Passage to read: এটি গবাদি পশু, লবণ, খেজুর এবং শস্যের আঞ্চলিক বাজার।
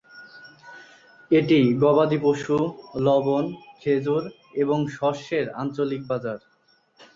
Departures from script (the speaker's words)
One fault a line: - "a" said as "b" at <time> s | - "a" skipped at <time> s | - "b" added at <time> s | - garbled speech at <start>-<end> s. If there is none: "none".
none